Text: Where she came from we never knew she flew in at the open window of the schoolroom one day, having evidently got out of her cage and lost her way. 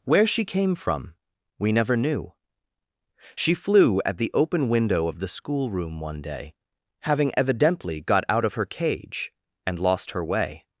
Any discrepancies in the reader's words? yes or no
yes